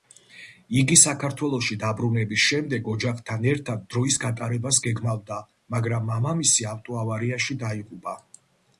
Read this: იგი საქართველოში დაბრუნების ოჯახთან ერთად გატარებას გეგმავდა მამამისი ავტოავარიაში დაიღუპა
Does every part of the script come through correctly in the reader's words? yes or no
no